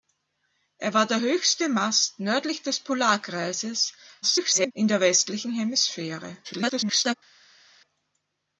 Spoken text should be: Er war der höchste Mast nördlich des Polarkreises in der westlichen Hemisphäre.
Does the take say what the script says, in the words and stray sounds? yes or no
no